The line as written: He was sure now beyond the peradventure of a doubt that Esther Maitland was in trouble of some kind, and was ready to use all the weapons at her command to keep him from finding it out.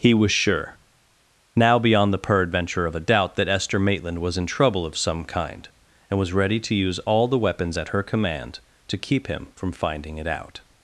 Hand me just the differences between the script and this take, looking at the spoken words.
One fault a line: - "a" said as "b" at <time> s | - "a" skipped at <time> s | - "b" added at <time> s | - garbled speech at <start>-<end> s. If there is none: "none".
none